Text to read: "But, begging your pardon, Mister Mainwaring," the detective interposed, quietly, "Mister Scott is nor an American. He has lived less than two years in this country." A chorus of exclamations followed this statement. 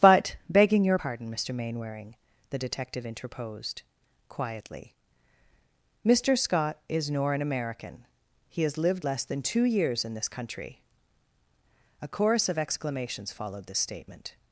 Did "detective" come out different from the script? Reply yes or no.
no